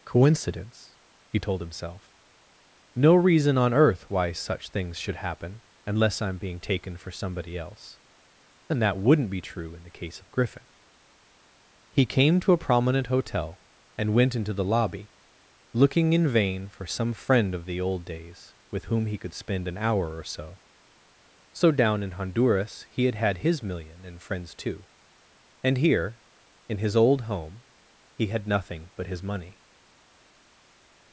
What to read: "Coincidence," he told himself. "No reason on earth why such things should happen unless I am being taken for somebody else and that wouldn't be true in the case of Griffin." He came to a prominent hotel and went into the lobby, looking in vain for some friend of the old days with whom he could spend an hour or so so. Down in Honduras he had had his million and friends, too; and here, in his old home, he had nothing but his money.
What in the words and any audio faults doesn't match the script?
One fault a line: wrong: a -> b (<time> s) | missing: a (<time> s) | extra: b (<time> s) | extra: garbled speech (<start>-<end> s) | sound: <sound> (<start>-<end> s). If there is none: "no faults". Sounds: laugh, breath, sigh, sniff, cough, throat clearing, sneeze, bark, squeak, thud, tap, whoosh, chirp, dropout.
no faults